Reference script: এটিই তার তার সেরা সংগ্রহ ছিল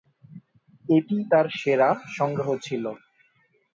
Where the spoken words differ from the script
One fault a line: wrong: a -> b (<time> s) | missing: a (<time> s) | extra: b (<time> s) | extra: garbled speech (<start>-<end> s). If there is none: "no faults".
missing: তার (1.5 s)